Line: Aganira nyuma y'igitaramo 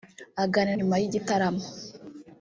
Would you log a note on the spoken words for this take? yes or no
no